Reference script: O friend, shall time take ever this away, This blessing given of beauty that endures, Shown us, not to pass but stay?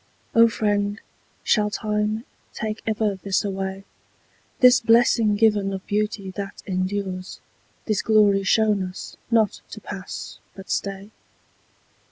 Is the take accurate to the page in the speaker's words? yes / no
no